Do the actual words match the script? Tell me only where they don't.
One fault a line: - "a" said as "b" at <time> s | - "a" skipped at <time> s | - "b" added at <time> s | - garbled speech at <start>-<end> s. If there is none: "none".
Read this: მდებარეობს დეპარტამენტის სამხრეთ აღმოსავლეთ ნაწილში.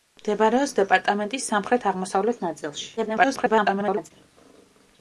- garbled speech at 3.0-4.1 s